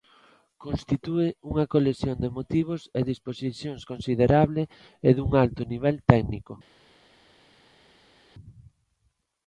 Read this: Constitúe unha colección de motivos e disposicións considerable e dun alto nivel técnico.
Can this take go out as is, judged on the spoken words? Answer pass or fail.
pass